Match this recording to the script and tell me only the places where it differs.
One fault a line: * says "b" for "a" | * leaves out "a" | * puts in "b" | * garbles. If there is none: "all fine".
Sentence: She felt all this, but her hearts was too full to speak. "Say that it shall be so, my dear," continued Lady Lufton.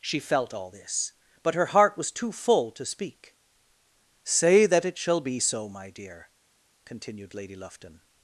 * says "heart" for "hearts"